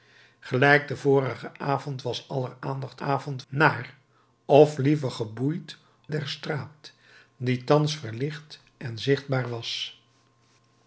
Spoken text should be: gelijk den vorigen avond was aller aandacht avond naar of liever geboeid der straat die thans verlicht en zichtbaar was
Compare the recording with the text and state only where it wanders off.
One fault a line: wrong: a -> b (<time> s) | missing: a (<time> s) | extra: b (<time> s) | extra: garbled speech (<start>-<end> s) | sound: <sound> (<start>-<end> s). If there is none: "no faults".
no faults